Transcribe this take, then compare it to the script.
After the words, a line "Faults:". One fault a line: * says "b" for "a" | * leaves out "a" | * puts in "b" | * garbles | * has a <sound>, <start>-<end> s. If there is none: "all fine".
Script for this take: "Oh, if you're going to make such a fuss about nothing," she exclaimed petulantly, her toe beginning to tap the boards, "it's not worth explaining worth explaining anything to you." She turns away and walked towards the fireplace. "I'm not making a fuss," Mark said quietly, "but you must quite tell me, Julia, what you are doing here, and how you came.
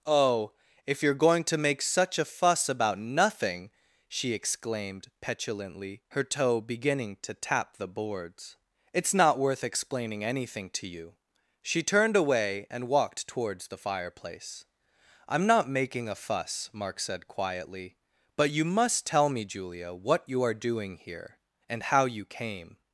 "Oh, if you're going to make such a fuss about nothing," she exclaimed petulantly, her toe beginning to tap the boards, "it's not worth explaining anything to you." She turned away and walked towards the fireplace. "I'm not making a fuss," Mark said quietly, "but you must tell me, Julia, what you are doing here, and how you came.
Faults:
* leaves out "worth explaining"
* says "turned" for "turns"
* leaves out "quite"